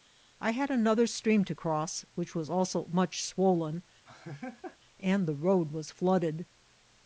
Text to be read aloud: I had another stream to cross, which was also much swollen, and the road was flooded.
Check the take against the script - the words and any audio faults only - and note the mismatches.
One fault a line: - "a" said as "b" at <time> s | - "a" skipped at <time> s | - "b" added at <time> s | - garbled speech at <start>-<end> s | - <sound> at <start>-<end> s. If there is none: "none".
- laugh at 4.1-4.8 s